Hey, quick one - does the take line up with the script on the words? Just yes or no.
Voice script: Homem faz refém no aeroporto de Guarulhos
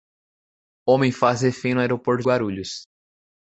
no